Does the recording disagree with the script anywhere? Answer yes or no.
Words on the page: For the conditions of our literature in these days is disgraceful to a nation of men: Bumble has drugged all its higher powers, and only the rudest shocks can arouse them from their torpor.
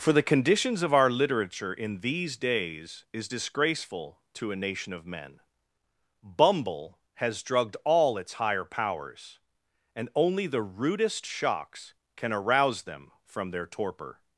no